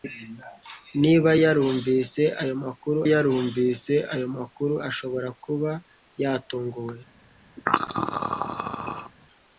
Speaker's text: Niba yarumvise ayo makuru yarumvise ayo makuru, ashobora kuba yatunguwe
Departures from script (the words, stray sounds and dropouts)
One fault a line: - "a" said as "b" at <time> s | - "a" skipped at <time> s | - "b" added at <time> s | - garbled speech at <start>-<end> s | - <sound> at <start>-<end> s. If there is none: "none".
- throat clearing at 7.6-9.1 s